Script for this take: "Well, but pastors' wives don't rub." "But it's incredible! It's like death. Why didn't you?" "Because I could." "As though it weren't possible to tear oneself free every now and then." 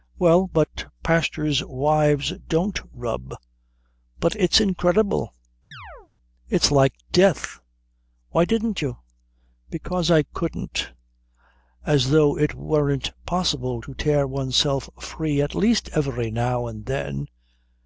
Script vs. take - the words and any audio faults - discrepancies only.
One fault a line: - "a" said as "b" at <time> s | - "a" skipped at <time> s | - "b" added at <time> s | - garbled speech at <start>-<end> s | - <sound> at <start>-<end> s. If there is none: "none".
- chirp at 5.7-6.1 s
- "could" said as "couldn't" at 10.2 s
- "at least" added at 15.4 s